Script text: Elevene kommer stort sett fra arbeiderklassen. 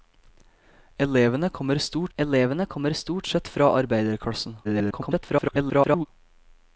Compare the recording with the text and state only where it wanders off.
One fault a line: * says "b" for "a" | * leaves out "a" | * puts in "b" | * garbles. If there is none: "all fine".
* puts in "elevene kommer stort"
* garbles